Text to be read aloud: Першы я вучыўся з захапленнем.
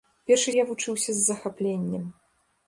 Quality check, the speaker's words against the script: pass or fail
pass